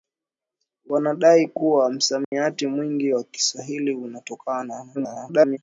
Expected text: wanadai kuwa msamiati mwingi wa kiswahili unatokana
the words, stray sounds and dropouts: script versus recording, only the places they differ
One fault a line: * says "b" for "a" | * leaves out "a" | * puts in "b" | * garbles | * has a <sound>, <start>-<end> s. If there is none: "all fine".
* has a dropout, 2.2-2.3 s
* garbles